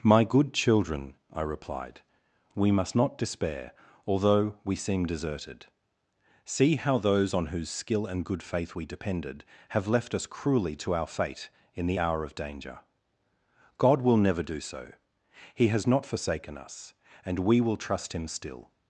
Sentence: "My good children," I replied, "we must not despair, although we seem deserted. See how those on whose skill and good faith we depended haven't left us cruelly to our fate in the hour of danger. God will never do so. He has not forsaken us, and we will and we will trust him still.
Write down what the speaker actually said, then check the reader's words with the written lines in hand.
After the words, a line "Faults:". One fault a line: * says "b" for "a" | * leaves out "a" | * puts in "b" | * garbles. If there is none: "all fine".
"My good children," I replied, "we must not despair, although we seem deserted. See how those on whose skill and good faith we depended have left us cruelly to our fate in the hour of danger. God will never do so. He has not forsaken us, and we will trust him still.
Faults:
* says "have" for "haven't"
* leaves out "and we will"